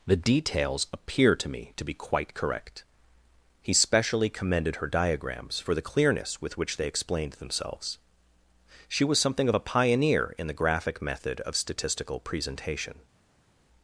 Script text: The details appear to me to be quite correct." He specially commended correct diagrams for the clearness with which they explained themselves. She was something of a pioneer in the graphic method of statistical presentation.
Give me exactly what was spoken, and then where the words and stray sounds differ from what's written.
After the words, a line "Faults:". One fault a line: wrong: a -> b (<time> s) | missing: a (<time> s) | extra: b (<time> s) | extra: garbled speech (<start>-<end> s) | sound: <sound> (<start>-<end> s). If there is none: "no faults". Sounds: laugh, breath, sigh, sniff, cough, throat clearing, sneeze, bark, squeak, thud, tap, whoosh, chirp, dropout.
The details appear to me to be quite correct." He specially commended her diagrams for the clearness with which they explained themselves. She was something of a pioneer in the graphic method of statistical presentation.
Faults:
wrong: correct -> her (4.8 s)